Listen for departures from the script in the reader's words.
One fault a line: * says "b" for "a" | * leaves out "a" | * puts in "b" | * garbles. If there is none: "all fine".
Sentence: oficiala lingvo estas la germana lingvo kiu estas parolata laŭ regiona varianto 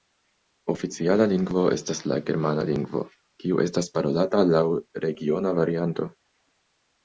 all fine